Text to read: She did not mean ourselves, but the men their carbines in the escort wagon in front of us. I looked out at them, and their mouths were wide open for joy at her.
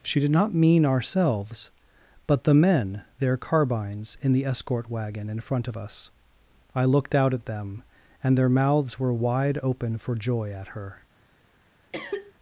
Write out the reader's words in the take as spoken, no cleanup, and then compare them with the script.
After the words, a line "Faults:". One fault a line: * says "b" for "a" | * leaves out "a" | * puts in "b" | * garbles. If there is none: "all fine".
She did not mean ourselves, but the men their carbines in the escort wagon in front of us. I looked out at them, and their mouths were wide open for joy at her.
Faults:
all fine